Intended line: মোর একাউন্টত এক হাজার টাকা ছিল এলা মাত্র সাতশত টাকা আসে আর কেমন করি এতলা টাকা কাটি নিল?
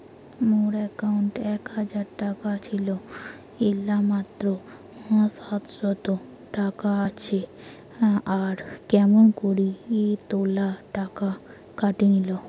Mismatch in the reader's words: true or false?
false